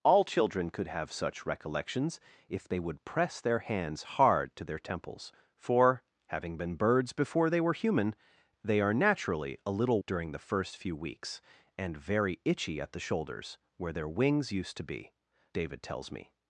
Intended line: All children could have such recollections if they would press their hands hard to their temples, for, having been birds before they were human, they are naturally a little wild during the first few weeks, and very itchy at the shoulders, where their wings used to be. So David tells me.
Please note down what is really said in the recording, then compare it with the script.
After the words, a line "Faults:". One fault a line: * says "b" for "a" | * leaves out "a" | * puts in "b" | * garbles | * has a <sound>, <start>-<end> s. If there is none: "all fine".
All children could have such recollections if they would press their hands hard to their temples, for, having been birds before they were human, they are naturally a little during the first few weeks, and very itchy at the shoulders, where their wings used to be. David tells me.
Faults:
* leaves out "wild"
* leaves out "So"